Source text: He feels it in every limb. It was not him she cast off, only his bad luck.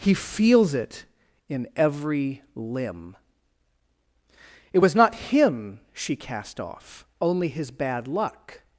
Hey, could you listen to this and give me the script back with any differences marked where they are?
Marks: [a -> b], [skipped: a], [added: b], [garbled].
He feels it in every limb. It was not him she cast off, only his bad luck.